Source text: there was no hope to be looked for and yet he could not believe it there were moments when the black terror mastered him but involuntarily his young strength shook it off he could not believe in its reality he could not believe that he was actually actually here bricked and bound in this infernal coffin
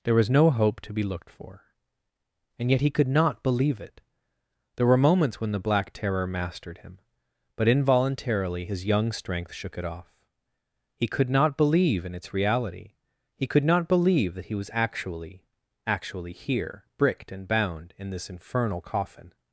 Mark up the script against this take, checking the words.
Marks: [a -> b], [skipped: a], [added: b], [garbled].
there was no hope to be looked for and yet he could not believe it there were moments when the black terror mastered him but involuntarily his young strength shook it off he could not believe in its reality he could not believe that he was actually actually here bricked and bound in this infernal coffin